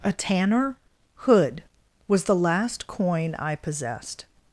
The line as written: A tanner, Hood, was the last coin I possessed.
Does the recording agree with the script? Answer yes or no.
yes